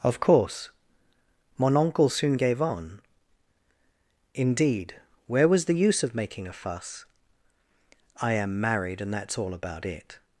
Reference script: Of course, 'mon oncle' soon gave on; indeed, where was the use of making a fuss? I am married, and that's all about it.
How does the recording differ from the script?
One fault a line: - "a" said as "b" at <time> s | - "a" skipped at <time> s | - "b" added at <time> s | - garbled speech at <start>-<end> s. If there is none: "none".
none